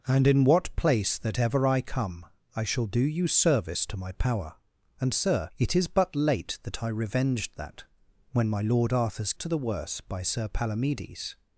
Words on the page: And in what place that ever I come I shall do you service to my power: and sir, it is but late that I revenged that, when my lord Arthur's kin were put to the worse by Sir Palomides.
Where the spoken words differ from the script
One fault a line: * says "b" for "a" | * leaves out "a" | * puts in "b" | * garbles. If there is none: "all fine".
* leaves out "kin were put"